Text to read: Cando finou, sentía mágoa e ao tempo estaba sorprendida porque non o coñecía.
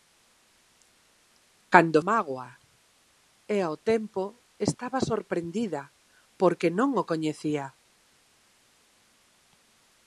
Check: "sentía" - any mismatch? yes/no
yes